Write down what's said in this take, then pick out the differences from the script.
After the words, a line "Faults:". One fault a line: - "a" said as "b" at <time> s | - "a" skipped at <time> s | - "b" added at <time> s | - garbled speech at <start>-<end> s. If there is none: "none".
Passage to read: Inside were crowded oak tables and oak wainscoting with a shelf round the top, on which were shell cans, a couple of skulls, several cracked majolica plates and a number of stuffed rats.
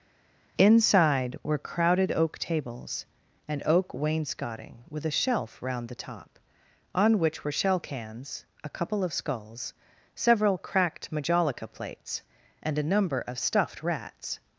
Inside were crowded oak tables and oak wainscoting with a shelf round the top, on which were shell cans, a couple of skulls, several cracked majolica plates and a number of stuffed rats.
Faults:
none